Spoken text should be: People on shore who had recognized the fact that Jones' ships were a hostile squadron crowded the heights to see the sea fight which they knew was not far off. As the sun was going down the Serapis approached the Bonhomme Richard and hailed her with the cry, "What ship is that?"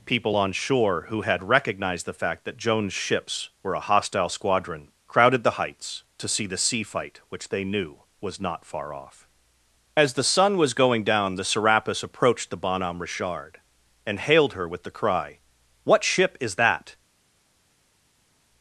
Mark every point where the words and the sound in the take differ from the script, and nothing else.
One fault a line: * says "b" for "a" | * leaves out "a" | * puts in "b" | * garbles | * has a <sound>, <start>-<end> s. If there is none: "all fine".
all fine